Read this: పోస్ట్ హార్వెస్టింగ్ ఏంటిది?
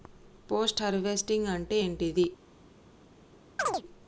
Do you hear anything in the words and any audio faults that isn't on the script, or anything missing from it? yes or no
yes